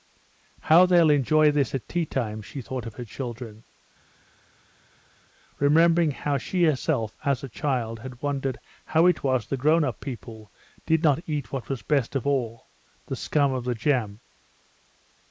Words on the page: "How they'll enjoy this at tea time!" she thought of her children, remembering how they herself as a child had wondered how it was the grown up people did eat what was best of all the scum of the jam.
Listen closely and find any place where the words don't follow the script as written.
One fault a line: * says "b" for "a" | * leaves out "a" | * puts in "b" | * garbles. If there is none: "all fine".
* says "she" for "they"
* puts in "not"